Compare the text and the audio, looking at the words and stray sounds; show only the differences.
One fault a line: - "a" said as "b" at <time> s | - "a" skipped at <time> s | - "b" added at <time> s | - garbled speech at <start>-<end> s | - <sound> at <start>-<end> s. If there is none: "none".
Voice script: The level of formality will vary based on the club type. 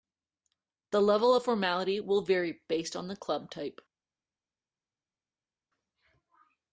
none